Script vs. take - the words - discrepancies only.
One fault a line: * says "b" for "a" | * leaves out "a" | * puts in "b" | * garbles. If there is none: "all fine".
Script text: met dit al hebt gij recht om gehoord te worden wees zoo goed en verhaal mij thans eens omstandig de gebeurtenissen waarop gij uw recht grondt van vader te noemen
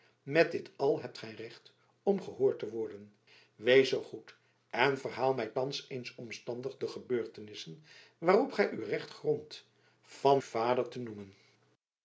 all fine